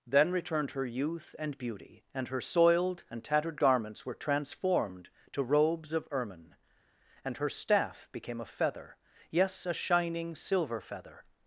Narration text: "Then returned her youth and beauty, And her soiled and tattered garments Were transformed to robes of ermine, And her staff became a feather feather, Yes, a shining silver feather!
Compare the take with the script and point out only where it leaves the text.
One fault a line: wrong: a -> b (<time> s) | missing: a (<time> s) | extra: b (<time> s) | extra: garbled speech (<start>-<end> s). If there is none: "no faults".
missing: feather (8.9 s)